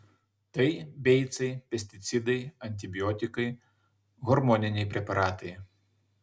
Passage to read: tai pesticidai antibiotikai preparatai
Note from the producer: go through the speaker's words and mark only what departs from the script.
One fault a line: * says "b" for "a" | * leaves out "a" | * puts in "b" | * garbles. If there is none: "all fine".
* puts in "beicai"
* puts in "hormoniniai"